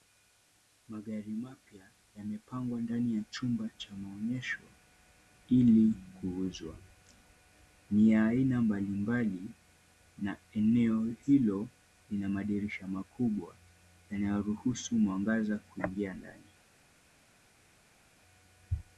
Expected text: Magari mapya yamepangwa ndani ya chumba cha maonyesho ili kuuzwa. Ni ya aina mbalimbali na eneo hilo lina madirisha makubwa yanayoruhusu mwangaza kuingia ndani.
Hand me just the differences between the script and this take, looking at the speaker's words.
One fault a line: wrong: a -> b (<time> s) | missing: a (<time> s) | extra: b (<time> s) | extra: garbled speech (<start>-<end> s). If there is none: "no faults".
no faults